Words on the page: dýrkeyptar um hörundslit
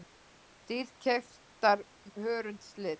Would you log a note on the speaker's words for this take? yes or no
no